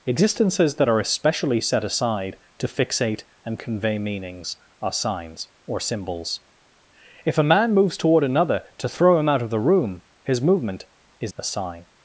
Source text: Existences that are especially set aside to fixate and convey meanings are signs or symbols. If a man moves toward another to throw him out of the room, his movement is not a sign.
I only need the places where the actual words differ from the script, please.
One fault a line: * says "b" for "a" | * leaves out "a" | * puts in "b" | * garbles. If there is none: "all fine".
* leaves out "not"